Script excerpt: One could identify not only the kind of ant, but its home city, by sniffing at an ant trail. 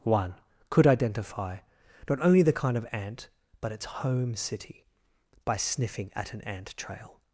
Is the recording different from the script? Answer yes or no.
no